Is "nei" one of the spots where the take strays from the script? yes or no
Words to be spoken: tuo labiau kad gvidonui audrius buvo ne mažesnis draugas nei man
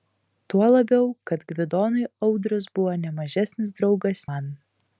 yes